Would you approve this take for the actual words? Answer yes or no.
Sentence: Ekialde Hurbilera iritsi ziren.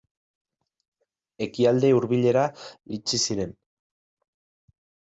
yes